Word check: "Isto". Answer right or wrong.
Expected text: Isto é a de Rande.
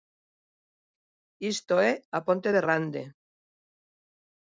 right